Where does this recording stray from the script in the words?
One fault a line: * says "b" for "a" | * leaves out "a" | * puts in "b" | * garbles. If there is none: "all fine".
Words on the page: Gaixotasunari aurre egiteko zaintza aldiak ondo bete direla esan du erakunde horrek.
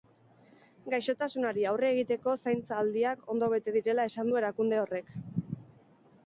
all fine